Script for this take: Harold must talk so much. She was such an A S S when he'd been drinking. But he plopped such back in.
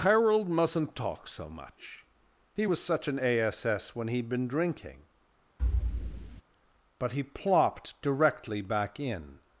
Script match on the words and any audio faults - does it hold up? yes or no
no